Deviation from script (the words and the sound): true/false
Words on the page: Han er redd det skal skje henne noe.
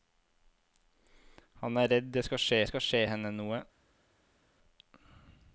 true